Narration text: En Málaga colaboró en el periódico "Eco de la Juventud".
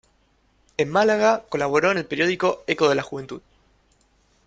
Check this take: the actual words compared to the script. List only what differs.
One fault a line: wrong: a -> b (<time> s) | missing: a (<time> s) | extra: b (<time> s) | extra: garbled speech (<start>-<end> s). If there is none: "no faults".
no faults